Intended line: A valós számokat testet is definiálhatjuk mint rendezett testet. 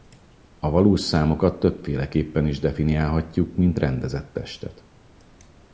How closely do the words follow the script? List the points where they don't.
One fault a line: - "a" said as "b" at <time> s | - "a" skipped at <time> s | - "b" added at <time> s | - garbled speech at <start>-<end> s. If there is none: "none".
- "testet" said as "többféleképpen" at 1.6 s